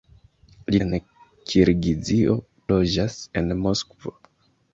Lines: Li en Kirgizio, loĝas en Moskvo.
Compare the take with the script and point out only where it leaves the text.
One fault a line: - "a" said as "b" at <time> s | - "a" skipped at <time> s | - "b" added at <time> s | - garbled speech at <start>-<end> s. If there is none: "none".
none